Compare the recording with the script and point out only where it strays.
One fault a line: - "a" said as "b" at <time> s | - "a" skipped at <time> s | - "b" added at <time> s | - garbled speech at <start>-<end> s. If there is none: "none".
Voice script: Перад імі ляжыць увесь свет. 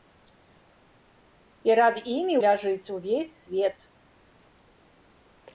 none